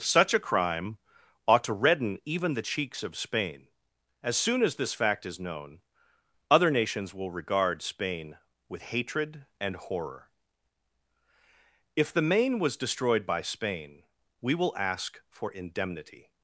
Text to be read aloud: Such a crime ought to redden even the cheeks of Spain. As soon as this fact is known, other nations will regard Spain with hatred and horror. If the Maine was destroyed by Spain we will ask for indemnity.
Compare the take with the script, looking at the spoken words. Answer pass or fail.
pass